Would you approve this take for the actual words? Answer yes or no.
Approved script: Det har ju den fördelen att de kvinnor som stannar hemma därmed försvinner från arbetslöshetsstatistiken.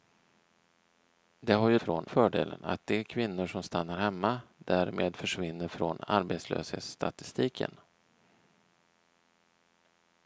no